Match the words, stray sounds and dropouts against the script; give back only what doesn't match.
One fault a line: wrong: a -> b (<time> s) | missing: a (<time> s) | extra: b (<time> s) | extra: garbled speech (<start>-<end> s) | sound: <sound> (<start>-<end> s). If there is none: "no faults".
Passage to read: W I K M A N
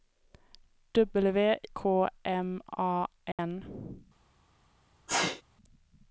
missing: I (1.6 s)
sound: dropout (3.3-3.4 s)
sound: sneeze (5.1-5.4 s)